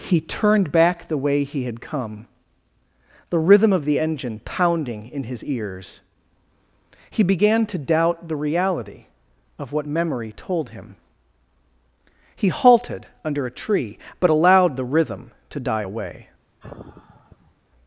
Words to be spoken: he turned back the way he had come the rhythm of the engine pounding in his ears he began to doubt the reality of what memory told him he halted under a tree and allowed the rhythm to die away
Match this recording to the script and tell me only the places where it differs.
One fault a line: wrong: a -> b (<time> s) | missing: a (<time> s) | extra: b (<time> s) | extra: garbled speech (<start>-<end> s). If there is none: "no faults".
wrong: and -> but (14.2 s)